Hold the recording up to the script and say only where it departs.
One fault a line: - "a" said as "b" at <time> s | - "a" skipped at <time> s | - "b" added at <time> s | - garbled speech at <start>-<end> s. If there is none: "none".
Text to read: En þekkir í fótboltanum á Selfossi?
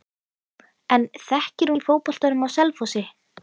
none